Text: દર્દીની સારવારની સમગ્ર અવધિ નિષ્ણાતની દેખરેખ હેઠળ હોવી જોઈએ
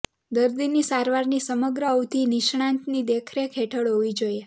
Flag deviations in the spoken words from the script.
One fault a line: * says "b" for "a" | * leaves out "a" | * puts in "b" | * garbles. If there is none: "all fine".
all fine